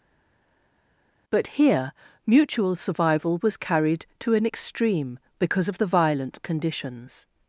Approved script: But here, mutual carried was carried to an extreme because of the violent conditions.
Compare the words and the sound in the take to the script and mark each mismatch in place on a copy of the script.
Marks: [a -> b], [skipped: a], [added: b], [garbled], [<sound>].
But here, mutual [carried -> survival] was carried to an extreme because of the violent conditions.